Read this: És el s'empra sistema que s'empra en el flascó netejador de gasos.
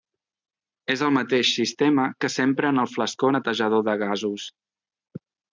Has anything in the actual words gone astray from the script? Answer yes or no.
yes